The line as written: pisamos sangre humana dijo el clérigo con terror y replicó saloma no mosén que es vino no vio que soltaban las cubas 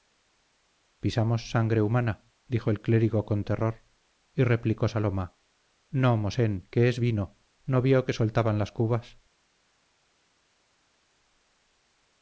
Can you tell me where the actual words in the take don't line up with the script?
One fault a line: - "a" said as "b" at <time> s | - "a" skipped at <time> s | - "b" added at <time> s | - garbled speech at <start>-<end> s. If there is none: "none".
none